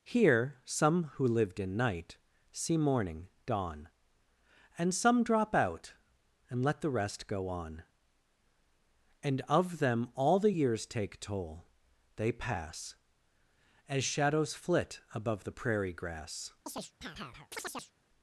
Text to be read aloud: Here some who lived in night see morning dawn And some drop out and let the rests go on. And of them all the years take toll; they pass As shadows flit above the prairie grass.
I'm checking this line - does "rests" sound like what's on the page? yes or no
no